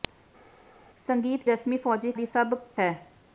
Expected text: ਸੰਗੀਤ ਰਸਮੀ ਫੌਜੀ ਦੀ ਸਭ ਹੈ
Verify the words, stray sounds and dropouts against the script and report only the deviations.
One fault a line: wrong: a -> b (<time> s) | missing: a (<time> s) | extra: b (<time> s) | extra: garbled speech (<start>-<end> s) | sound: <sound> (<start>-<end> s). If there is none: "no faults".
no faults